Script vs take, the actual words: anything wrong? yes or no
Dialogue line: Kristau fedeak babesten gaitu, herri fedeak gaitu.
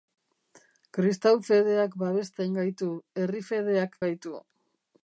no